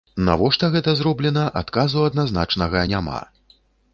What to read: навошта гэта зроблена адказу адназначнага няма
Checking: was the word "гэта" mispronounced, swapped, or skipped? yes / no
no